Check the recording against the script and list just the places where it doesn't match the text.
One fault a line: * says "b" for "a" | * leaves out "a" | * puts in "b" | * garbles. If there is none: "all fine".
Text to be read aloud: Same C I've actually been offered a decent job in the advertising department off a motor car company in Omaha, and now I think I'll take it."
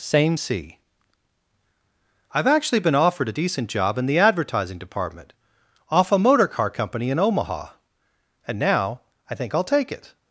all fine